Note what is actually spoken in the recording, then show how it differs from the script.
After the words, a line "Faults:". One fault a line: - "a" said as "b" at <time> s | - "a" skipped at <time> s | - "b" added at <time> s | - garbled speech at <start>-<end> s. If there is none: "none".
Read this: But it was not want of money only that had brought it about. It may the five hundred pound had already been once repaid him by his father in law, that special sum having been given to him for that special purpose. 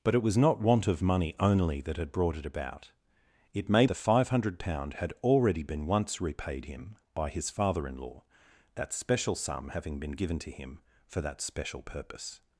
But it was not want of money only that had brought it about. It may the five hundred pound had already been once repaid him by his father in law, that special sum having been given to him for that special purpose.
Faults:
none